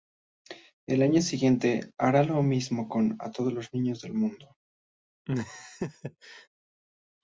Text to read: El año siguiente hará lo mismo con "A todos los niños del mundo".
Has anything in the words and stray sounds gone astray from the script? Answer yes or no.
yes